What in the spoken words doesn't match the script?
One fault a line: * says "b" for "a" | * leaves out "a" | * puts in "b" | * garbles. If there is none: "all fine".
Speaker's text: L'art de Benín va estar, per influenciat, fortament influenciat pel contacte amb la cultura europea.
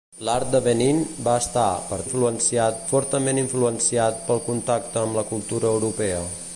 all fine